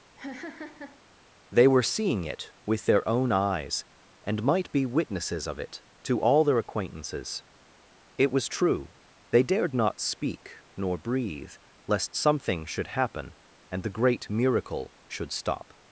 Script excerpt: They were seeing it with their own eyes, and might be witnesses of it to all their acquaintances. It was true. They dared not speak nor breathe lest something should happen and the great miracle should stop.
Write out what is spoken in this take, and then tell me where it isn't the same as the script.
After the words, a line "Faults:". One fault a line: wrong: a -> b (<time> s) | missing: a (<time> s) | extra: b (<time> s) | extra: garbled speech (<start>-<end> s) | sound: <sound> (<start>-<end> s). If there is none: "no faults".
They were seeing it with their own eyes, and might be witnesses of it to all their acquaintances. It was true. They dared not speak nor breathe lest something should happen and the great miracle should stop.
Faults:
sound: laugh (0.2-1.0 s)